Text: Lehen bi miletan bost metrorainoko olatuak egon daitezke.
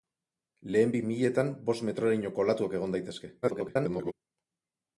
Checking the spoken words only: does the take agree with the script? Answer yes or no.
no